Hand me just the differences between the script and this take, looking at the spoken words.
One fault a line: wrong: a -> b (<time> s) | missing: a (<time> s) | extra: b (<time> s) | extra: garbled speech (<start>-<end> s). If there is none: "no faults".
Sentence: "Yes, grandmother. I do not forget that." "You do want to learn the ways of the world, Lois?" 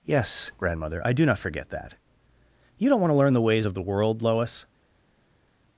wrong: do -> don't (2.9 s)